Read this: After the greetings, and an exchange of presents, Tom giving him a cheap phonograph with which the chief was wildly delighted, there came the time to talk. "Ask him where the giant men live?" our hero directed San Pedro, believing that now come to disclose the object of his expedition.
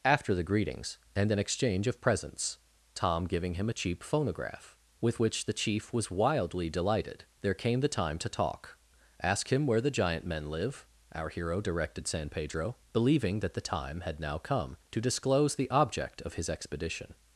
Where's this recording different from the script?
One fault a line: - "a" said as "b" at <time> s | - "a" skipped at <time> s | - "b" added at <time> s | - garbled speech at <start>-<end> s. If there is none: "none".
- "the time had" added at 13.5 s